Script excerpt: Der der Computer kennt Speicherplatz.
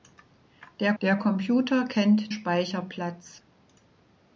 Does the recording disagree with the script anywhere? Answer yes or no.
no